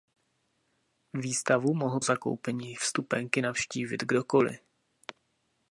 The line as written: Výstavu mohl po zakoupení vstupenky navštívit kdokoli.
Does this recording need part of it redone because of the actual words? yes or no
yes